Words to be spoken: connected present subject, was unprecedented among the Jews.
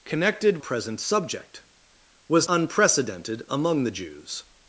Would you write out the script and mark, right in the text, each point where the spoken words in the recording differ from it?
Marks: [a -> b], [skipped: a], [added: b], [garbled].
connected present subject, was unprecedented among the Jews.